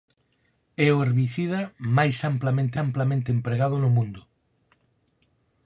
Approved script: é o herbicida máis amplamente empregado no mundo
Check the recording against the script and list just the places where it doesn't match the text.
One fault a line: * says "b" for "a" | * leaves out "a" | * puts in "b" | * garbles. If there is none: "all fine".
* puts in "amplamente"